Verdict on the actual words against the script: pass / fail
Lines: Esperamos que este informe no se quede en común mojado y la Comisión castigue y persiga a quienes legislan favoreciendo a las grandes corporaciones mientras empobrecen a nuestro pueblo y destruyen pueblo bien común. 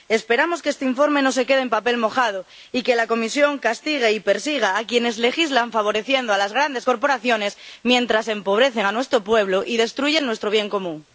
fail